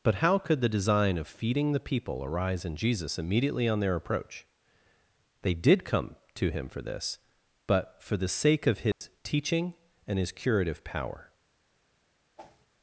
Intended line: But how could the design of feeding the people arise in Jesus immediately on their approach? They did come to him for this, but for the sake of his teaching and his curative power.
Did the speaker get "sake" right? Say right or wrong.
right